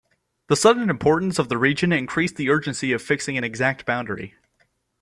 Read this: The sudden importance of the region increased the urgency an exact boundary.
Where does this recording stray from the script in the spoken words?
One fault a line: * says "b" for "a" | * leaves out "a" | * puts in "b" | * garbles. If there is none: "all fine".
* puts in "of fixing"